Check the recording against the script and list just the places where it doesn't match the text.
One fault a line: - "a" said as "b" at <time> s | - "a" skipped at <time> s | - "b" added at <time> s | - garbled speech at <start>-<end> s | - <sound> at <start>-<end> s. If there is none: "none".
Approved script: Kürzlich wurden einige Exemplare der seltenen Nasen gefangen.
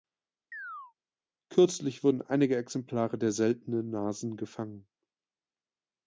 - chirp at 0.5-0.9 s